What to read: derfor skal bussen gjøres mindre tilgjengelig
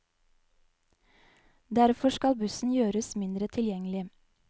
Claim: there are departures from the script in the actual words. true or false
false